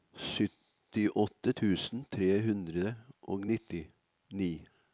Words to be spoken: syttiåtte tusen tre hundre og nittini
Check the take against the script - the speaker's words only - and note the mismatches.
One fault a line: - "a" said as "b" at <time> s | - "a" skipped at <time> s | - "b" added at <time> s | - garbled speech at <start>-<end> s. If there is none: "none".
none